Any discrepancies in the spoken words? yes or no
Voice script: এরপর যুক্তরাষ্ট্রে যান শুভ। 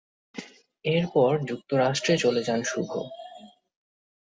yes